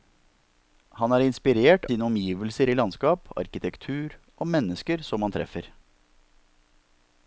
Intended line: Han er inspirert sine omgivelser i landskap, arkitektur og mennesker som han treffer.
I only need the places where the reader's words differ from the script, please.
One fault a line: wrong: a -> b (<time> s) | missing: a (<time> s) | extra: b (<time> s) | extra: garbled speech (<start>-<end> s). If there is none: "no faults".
no faults